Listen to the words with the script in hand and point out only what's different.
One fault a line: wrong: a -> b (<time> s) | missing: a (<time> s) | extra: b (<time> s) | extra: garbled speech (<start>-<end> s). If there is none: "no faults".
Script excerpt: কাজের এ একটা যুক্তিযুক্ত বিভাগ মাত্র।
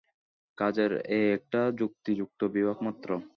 no faults